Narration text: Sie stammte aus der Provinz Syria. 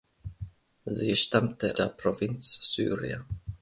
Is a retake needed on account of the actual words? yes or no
yes